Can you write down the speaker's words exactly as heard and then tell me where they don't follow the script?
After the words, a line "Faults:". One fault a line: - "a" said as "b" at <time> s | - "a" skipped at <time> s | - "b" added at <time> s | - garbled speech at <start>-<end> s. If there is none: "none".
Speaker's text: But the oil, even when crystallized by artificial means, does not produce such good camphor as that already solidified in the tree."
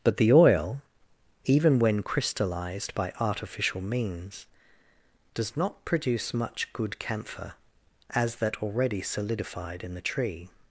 But the oil, even when crystallized by artificial means, does not produce much good camphor as that already solidified in the tree."
Faults:
- "such" said as "much" at 6.3 s